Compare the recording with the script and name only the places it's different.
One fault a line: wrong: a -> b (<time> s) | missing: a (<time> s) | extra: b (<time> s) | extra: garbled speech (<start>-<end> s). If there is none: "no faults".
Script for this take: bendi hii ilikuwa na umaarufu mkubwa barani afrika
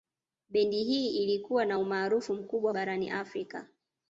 no faults